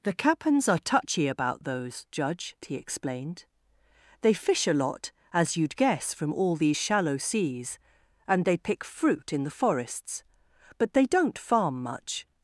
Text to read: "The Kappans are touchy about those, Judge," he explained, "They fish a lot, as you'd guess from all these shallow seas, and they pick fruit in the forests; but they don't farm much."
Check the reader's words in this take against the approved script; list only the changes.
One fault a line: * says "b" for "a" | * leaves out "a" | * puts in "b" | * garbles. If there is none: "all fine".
all fine